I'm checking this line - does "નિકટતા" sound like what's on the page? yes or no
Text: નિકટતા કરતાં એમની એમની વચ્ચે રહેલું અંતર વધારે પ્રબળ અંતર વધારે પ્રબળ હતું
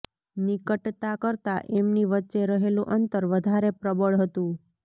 yes